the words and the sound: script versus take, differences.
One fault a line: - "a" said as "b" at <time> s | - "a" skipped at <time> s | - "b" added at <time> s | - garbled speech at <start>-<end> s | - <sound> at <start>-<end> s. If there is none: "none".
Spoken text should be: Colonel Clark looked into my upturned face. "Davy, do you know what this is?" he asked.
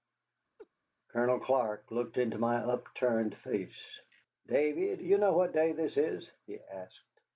- laugh at 0.6-0.7 s
- "day" added at 5.5 s